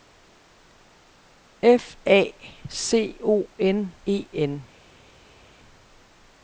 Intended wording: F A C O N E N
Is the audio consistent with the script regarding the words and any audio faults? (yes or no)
yes